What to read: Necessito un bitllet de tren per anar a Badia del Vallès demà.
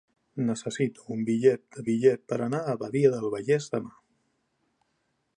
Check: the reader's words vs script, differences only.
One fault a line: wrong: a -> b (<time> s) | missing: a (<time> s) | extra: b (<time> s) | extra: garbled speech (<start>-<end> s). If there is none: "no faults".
wrong: tren -> bitllet (1.9 s)